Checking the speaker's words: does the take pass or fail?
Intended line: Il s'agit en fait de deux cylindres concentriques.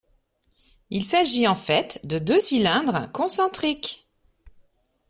pass